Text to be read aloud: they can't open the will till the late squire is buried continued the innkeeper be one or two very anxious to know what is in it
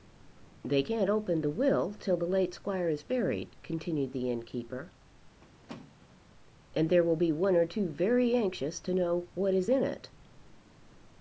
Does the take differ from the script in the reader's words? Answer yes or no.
yes